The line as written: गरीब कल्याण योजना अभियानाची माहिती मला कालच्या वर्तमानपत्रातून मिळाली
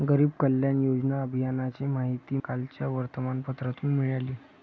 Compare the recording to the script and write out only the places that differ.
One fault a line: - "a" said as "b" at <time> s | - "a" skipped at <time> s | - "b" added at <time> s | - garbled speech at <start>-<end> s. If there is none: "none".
- "मला" skipped at 2.4 s